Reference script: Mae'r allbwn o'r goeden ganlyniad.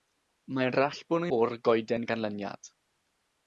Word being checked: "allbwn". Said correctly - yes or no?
yes